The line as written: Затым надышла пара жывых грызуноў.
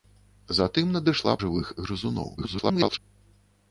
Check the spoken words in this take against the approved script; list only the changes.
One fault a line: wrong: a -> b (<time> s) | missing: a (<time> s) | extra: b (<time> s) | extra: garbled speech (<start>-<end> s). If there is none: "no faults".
missing: пара (1.4 s)
extra: garbled speech (2.4-3.0 s)